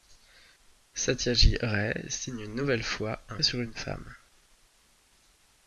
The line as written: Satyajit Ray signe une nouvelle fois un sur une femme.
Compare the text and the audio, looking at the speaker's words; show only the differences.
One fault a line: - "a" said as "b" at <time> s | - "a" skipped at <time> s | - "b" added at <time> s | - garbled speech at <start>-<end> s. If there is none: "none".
none